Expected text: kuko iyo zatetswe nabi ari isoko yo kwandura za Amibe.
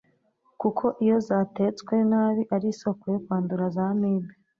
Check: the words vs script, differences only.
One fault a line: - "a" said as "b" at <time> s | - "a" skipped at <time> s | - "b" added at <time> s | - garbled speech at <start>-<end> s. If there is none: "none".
none